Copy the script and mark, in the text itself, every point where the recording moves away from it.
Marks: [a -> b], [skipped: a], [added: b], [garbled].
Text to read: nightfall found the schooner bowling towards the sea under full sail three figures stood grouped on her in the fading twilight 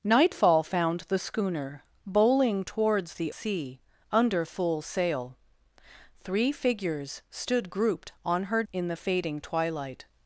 nightfall found the schooner bowling towards the sea under full sail three figures stood grouped on her in the fading twilight